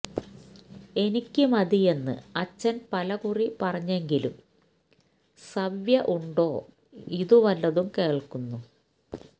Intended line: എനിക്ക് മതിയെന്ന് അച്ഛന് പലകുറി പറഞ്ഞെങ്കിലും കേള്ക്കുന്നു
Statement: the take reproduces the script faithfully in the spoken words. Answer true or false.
false